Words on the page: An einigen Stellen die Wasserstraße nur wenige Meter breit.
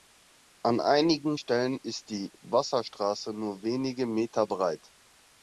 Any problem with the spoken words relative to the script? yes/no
yes